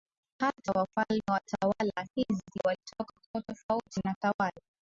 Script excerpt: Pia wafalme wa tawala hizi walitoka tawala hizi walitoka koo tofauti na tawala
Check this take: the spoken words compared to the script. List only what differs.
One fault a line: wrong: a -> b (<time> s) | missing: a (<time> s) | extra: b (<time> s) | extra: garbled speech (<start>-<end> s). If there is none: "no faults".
wrong: Pia -> Hata (0.4 s)
missing: tawala hizi walitoka (3.1 s)